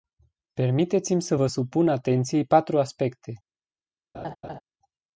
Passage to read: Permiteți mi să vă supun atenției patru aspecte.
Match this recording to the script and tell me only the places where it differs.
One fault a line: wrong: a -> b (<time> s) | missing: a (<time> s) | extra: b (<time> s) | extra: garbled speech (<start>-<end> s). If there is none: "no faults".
no faults